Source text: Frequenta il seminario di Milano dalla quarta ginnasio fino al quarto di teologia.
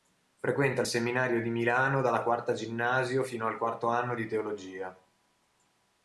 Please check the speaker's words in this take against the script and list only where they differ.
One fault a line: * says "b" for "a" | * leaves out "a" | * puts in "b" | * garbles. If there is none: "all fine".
* puts in "anno"